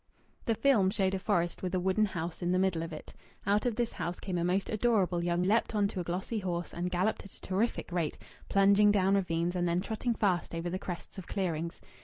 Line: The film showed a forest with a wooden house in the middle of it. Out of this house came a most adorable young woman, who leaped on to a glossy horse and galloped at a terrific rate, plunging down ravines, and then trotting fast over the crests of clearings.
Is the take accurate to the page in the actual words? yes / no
no